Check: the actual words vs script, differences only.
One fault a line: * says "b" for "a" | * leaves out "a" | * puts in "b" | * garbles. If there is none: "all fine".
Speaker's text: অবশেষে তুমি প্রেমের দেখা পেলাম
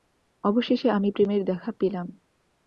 * says "আমি" for "তুমি"